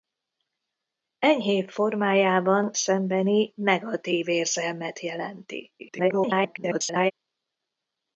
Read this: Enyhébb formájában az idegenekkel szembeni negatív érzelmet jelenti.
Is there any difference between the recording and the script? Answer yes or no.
yes